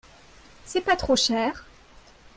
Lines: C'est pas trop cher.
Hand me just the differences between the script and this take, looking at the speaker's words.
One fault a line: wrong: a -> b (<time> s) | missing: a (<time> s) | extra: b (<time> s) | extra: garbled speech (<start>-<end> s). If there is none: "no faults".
no faults